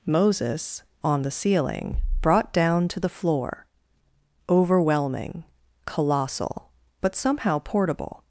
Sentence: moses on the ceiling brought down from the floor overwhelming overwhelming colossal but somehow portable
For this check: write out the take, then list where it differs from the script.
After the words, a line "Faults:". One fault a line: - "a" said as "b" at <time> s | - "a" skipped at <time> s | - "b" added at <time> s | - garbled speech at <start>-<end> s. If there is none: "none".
moses on the ceiling brought down to the floor overwhelming colossal but somehow portable
Faults:
- "from" said as "to" at 2.9 s
- "overwhelming" skipped at 5.4 s